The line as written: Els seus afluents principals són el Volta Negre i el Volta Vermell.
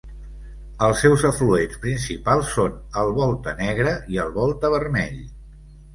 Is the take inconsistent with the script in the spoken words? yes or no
no